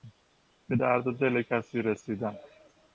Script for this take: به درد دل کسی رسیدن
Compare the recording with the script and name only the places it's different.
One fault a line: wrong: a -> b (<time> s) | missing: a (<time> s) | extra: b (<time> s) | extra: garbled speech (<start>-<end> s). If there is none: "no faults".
no faults